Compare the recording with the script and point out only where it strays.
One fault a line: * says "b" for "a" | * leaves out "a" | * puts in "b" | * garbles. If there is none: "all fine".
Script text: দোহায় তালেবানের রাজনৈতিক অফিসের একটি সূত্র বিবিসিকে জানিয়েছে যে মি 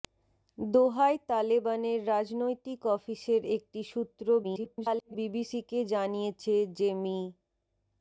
* garbles